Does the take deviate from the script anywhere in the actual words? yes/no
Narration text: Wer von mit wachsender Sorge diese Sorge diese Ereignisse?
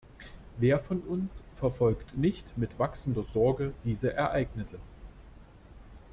yes